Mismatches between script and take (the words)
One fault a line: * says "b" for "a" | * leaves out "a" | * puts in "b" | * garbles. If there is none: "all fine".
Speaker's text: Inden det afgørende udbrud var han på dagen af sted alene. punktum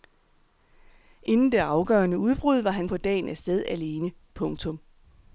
all fine